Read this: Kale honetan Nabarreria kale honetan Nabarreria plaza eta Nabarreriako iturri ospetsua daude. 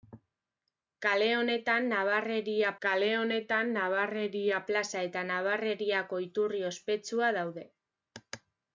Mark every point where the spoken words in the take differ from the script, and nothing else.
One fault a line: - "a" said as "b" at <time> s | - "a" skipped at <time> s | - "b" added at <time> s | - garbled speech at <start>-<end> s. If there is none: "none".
none